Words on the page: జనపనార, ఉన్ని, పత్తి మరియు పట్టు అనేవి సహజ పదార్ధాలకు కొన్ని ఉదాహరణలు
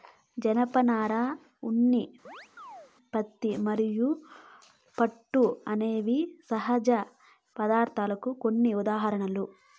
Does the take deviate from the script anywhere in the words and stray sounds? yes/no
yes